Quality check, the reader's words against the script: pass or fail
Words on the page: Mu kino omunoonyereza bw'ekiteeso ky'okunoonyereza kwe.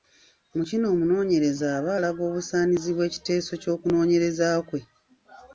fail